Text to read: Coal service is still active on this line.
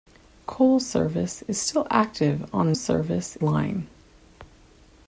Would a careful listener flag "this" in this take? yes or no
yes